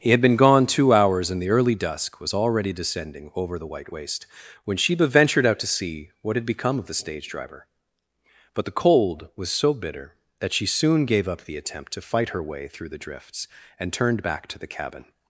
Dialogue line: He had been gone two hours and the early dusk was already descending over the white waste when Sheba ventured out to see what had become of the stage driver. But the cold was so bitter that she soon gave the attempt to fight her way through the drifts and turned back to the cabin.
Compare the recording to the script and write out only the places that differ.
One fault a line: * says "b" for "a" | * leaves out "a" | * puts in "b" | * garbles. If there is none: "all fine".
* puts in "up"